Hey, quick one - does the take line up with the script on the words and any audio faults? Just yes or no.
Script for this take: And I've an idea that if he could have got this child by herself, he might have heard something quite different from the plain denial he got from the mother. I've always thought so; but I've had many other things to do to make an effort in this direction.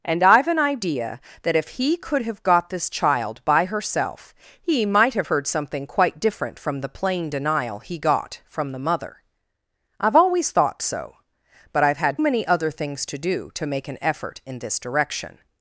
yes